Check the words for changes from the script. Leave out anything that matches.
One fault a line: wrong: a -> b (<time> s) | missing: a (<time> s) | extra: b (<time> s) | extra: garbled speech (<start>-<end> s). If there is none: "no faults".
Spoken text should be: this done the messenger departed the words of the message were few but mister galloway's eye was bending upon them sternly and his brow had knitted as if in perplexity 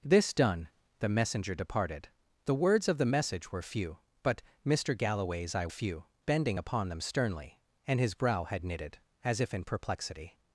wrong: was -> few (5.7 s)